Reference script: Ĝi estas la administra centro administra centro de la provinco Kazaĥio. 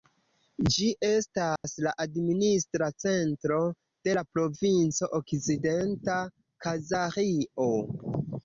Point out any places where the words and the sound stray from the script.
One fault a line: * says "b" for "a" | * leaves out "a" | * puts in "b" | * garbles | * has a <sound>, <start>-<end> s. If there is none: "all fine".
* has a dropout, 1.6-1.6 s
* leaves out "administra centro"
* puts in "Okcidenta"